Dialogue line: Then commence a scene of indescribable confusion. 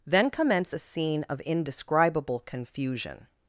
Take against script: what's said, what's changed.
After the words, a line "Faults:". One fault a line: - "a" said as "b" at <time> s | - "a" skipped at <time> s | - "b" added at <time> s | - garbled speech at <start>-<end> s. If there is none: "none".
Then commence a scene of indescribable confusion.
Faults:
none